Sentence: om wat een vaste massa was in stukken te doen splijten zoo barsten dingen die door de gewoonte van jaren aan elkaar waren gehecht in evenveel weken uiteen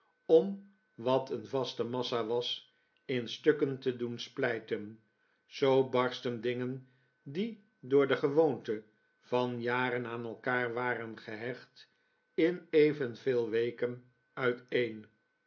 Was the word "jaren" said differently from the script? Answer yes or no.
no